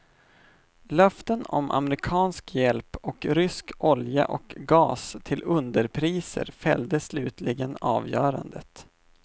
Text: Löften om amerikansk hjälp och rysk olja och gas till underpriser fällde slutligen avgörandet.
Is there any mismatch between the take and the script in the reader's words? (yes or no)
no